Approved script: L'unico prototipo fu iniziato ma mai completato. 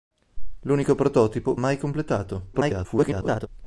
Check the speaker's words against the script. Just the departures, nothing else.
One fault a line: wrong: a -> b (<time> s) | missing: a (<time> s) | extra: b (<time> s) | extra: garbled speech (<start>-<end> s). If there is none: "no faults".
missing: fu iniziato ma (1.6 s)
extra: garbled speech (2.5-3.5 s)